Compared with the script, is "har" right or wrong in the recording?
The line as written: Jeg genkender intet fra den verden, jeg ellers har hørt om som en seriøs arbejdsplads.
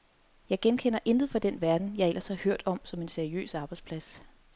right